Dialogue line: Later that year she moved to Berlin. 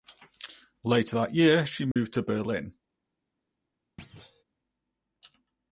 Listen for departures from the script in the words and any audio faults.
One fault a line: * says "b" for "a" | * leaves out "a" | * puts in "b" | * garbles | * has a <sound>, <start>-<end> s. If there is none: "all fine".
* has a dropout, 1.9-2.0 s
* has a thud, 4.0-4.4 s